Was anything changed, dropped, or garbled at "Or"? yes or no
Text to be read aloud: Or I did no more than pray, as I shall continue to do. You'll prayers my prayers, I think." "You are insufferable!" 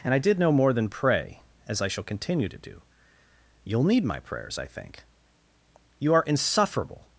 yes